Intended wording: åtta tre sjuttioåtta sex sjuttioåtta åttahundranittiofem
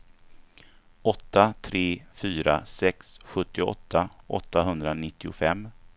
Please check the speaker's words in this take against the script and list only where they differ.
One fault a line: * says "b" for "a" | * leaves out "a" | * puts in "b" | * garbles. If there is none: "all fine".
* says "fyra" for "sjuttioåtta"